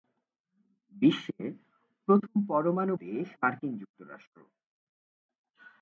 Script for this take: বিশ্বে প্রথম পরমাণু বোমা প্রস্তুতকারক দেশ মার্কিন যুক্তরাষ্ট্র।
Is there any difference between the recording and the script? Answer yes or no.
yes